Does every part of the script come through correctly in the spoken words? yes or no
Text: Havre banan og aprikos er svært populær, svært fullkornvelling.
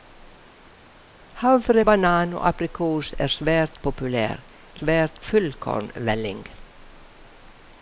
yes